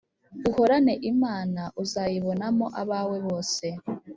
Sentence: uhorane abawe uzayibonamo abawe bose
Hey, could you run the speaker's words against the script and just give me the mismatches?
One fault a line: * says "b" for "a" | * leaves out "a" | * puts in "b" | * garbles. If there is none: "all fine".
* says "imana" for "abawe"